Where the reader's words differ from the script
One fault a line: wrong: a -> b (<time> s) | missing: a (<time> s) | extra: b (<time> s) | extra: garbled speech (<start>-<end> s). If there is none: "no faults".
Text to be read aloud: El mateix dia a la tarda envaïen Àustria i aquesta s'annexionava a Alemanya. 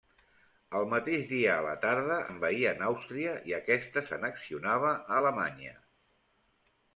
no faults